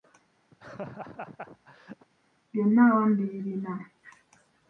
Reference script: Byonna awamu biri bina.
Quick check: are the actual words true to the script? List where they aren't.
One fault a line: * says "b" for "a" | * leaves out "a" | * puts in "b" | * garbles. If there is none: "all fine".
all fine